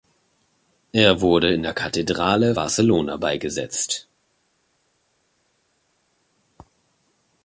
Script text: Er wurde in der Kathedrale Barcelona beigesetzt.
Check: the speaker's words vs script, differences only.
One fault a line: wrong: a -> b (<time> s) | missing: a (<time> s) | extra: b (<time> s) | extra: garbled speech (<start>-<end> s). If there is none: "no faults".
no faults